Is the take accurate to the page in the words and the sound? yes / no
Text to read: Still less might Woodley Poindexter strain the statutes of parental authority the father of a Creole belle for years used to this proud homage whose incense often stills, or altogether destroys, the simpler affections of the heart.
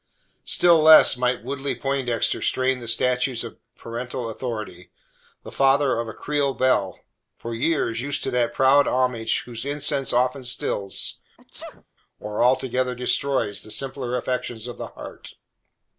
no